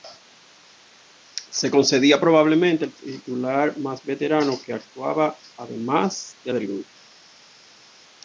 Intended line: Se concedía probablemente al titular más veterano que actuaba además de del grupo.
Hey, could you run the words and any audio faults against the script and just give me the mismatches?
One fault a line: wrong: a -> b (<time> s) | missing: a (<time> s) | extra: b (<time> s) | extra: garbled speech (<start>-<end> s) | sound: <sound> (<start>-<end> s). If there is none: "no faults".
no faults